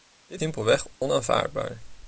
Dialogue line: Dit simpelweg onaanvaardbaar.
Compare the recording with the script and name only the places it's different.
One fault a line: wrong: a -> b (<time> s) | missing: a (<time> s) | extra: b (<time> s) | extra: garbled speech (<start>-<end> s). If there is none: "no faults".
no faults